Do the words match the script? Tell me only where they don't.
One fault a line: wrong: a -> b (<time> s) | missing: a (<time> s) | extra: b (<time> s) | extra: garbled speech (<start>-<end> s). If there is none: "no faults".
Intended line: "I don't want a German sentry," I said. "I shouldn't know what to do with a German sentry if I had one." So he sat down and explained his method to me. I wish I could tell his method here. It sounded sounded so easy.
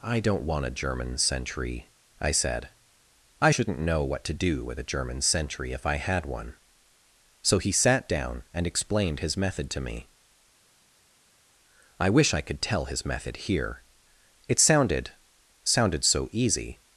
no faults